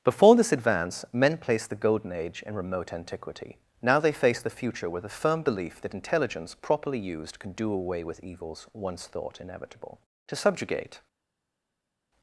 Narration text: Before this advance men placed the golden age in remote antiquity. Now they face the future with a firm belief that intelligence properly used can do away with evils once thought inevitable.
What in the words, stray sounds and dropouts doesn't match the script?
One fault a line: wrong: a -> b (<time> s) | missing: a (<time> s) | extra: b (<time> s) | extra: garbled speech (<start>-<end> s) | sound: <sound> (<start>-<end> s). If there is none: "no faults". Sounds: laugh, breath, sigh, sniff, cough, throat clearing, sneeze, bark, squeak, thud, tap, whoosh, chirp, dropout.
extra: To subjugate (10.3 s)